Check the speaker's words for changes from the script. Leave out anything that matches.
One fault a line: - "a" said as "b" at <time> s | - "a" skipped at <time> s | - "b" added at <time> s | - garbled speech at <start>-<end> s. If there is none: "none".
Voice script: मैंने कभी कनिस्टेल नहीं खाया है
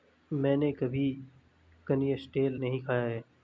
none